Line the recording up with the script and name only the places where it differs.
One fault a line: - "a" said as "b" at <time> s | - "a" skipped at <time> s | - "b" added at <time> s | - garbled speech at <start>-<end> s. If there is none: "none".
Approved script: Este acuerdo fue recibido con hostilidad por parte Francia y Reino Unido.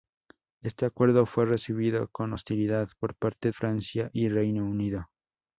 none